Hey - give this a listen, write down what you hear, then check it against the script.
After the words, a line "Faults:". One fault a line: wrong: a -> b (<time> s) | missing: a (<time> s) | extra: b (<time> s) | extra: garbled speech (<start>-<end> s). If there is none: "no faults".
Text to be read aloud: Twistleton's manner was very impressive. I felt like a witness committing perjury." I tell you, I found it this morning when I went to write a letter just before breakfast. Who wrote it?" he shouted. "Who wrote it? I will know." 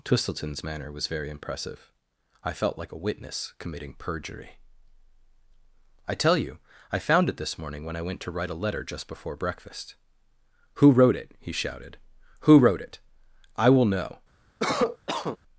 Twistleton's manner was very impressive. I felt like a witness committing perjury." I tell you, I found it this morning when I went to write a letter just before breakfast. Who wrote it?" he shouted. "Who wrote it? I will know."
Faults:
no faults